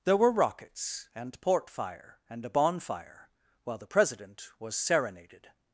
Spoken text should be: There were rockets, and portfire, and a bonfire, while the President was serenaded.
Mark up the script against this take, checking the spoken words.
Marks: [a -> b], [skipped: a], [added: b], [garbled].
There were rockets, and portfire, and a bonfire, while the President was serenaded.